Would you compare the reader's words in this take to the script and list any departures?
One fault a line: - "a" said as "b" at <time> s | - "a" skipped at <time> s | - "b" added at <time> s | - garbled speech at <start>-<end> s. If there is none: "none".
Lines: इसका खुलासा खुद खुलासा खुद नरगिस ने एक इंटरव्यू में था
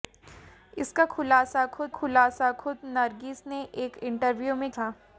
none